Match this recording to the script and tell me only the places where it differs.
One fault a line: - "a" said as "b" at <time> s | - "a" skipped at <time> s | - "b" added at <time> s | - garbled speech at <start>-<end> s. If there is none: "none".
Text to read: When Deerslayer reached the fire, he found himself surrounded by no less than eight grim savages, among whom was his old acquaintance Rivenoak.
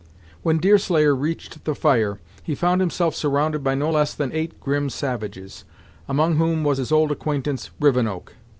none